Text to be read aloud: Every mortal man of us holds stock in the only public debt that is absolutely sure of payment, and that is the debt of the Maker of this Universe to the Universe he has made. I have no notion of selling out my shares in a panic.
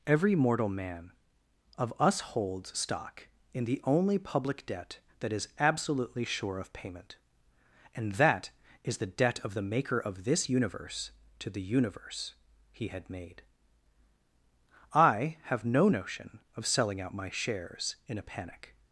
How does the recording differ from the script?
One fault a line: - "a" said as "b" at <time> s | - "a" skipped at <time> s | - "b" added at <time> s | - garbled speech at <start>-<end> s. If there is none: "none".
- "has" said as "had" at 12.9 s